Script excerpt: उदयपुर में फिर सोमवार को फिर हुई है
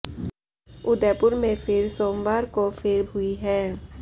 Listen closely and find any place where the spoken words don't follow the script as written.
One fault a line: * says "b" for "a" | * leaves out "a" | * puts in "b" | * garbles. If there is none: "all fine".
all fine